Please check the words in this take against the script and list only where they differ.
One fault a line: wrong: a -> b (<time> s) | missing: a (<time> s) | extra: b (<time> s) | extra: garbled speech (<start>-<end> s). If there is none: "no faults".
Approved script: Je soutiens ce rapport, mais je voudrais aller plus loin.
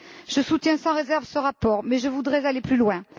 extra: sans réserve (0.8 s)